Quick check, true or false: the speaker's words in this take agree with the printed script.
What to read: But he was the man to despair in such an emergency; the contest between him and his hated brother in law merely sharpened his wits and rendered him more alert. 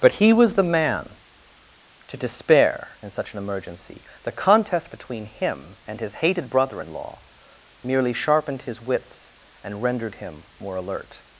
true